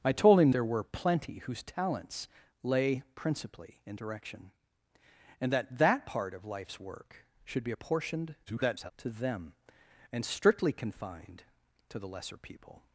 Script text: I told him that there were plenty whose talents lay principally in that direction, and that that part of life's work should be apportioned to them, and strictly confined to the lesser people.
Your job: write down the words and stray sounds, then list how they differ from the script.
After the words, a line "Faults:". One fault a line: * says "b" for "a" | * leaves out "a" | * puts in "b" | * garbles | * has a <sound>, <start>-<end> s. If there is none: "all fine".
I told him there were plenty whose talents lay principally in direction, and that that part of life's work should be apportioned [garbled] to them, and strictly confined to the lesser people.
Faults:
* leaves out "that"
* leaves out "that"
* garbles